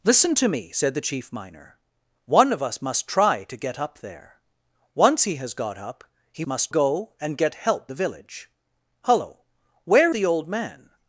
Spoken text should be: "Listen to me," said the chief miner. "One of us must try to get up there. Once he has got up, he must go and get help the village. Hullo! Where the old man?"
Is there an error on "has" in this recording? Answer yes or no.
no